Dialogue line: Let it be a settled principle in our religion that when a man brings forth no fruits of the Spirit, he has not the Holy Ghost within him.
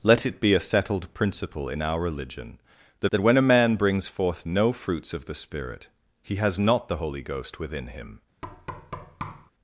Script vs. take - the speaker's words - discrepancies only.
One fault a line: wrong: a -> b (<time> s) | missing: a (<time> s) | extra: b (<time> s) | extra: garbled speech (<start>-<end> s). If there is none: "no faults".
extra: that (3.1 s)